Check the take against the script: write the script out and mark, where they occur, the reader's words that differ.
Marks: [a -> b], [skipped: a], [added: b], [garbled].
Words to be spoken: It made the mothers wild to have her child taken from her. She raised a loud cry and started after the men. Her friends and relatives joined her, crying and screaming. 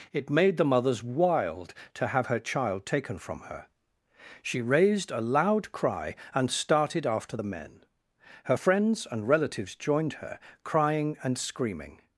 It made the mothers wild to have her child taken from her. She raised a loud cry and started after the men. Her friends and relatives joined her, crying and screaming.